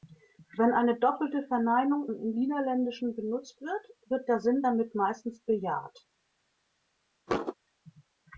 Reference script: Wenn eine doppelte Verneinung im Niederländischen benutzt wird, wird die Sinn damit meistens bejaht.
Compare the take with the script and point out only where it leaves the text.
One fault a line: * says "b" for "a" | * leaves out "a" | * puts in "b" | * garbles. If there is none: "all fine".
* says "der" for "die"